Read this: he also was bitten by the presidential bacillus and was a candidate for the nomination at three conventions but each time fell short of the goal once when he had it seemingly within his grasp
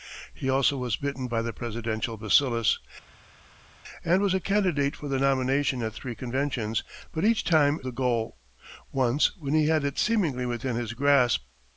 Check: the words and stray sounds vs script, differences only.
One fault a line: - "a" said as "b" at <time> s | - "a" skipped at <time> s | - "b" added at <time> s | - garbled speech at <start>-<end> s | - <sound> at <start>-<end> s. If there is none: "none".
- "fell short of" skipped at 7.8 s